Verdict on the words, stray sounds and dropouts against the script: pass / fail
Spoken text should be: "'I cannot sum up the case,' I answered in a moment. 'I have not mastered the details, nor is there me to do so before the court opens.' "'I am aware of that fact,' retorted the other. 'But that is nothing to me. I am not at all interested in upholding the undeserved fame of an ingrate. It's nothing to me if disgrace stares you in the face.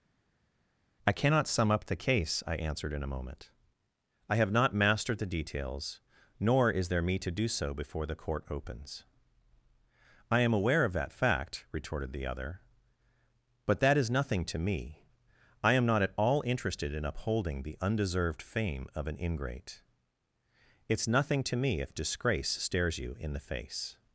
pass